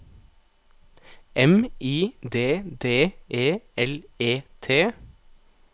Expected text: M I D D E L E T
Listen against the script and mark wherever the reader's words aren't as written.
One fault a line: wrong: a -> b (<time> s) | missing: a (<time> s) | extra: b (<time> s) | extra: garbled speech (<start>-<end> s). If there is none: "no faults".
no faults